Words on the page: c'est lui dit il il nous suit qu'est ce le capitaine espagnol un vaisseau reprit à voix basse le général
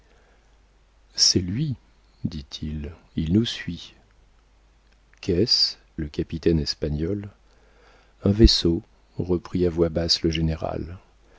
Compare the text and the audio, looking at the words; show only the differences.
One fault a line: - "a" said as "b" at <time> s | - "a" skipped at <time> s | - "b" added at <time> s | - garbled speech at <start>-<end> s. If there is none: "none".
none